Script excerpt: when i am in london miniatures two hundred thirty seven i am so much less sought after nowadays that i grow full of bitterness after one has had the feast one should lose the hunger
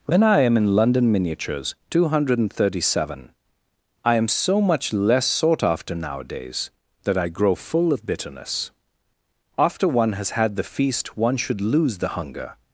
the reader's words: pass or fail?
pass